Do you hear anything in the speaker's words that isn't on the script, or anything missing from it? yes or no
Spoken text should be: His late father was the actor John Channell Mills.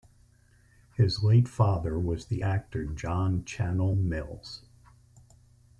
no